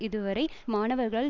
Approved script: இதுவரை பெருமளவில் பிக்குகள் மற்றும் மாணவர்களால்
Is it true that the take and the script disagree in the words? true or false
true